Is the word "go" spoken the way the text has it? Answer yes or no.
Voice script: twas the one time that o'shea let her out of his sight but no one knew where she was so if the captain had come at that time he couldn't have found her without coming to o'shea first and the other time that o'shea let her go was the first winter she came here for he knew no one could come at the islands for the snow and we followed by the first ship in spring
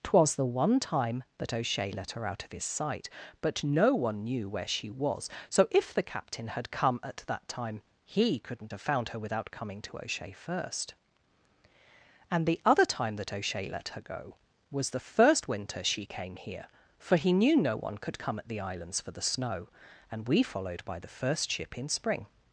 yes